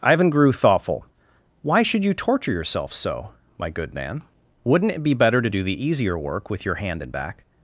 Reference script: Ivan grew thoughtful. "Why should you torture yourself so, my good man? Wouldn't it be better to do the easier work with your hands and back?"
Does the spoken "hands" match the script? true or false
false